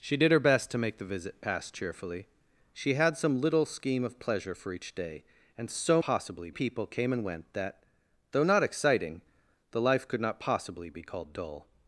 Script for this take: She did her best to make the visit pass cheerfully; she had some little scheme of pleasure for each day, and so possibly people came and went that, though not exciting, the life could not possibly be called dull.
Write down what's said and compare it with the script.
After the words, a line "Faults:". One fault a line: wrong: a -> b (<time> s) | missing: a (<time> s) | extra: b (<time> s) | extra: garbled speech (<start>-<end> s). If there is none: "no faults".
She did her best to make the visit pass cheerfully; she had some little scheme of pleasure for each day, and so possibly people came and went that, though not exciting, the life could not possibly be called dull.
Faults:
no faults